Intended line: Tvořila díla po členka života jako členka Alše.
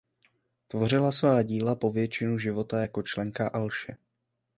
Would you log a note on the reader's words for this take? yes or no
yes